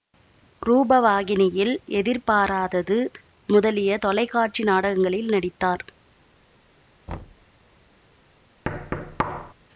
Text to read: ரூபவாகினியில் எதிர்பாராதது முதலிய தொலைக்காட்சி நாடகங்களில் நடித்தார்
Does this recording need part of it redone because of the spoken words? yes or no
no